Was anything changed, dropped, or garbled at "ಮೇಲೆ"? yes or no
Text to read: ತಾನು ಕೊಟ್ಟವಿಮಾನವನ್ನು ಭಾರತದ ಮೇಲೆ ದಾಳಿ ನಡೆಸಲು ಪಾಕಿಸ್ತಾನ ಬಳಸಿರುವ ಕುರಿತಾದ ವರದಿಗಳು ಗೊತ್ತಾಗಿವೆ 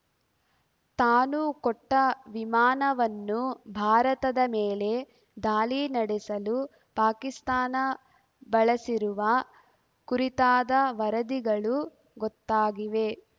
no